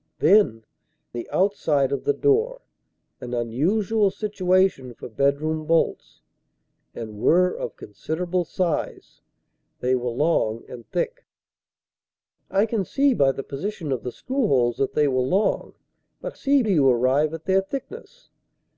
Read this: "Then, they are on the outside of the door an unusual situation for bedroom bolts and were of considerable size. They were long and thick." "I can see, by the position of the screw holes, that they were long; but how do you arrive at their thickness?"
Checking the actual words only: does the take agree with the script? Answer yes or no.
no